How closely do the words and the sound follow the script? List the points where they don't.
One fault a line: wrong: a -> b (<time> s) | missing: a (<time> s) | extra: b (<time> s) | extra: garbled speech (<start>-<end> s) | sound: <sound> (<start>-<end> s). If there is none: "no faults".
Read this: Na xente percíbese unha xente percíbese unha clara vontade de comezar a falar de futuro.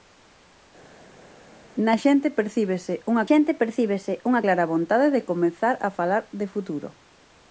no faults